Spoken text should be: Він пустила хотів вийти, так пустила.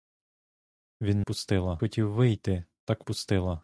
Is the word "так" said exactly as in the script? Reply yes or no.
yes